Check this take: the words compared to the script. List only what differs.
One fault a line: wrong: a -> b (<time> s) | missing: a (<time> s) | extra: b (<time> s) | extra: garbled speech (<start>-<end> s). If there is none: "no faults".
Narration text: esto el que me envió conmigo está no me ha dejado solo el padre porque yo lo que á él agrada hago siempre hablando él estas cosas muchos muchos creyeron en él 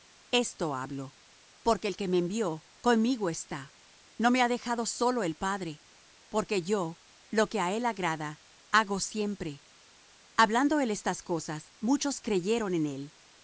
extra: hablo porque (0.8 s)
missing: muchos (12.2 s)